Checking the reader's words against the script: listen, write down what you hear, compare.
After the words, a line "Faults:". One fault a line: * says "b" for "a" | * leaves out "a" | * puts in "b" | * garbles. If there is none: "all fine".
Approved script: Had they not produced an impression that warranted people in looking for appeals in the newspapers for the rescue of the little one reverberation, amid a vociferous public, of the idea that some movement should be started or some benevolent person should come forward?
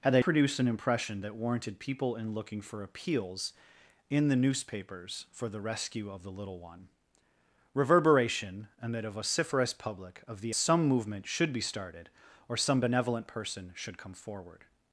Had they produced an impression that warranted people in looking for appeals in the newspapers for the rescue of the little one reverberation, amid a vociferous public, of the some movement should be started or some benevolent person should come forward?
Faults:
* leaves out "not"
* leaves out "idea that"